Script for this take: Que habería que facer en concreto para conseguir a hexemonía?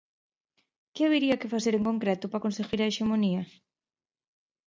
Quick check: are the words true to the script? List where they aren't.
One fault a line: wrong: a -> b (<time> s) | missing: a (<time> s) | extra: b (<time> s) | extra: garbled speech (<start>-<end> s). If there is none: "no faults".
no faults